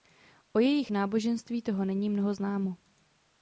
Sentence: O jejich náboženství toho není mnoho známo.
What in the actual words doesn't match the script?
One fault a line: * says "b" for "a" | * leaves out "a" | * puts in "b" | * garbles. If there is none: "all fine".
all fine